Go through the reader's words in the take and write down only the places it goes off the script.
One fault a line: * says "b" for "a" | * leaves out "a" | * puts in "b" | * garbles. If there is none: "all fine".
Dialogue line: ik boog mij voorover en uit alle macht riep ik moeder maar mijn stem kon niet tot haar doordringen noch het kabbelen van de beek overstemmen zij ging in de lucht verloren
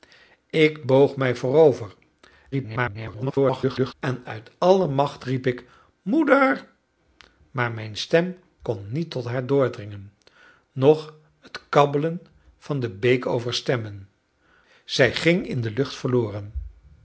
* garbles